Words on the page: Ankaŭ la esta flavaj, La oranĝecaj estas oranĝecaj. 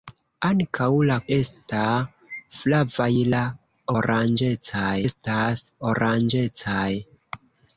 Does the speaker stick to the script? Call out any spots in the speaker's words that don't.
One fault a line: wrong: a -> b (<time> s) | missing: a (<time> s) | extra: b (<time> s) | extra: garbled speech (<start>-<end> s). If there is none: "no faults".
no faults